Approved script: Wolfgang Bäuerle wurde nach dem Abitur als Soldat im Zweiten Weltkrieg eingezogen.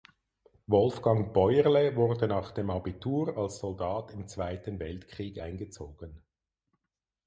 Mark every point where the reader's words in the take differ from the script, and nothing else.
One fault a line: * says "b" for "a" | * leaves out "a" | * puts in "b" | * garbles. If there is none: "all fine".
all fine